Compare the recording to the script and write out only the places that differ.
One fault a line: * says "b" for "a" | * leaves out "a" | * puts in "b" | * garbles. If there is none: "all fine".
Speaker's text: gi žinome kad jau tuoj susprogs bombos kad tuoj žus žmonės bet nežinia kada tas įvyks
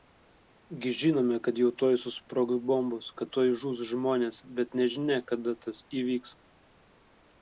all fine